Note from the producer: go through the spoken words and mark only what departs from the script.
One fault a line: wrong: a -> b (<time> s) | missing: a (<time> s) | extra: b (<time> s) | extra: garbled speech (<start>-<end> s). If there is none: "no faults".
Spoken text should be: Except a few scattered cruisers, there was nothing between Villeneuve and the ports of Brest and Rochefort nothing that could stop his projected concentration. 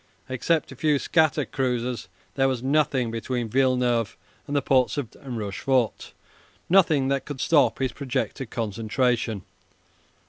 missing: Brest (5.1 s)